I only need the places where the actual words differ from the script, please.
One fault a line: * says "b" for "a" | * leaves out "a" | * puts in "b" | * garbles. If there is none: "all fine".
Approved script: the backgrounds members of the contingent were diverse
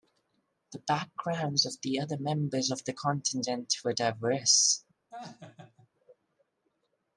* puts in "of the other"